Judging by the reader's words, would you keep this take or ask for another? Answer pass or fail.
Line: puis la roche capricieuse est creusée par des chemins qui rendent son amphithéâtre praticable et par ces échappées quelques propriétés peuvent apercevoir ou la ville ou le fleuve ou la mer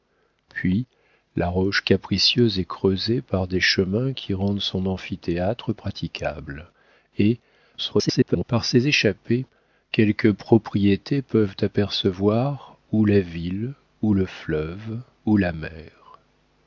fail